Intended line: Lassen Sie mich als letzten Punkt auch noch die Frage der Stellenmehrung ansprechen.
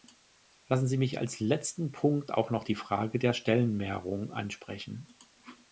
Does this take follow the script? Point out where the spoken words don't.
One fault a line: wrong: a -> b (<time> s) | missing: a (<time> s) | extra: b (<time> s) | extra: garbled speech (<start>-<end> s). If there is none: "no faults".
no faults